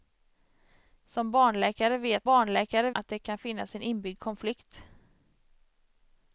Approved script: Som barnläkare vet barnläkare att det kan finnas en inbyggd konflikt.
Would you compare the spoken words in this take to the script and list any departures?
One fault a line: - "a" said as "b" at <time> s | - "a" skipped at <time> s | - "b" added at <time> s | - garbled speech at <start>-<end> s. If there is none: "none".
none